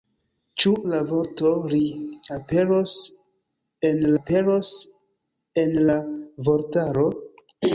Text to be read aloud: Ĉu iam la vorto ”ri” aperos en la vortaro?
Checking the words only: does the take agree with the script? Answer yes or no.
no